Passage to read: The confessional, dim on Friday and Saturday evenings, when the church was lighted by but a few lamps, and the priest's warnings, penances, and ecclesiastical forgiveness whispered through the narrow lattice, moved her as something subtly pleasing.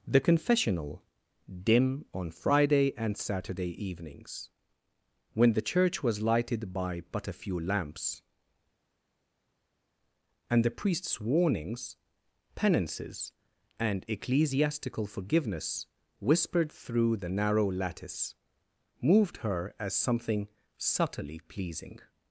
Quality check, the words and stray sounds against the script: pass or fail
pass